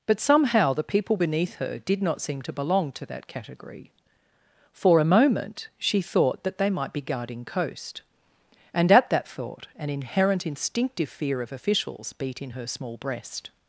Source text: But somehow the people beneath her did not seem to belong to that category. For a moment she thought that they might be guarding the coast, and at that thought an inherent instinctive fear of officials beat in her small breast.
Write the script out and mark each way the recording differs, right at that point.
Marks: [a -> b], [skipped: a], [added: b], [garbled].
But somehow the people beneath her did not seem to belong to that category. For a moment she thought that they might be guarding [skipped: the] coast, and at that thought an inherent instinctive fear of officials beat in her small breast.